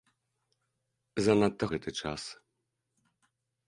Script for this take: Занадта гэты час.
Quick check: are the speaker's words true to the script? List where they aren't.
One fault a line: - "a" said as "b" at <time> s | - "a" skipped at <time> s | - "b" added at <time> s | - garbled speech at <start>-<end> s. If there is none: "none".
none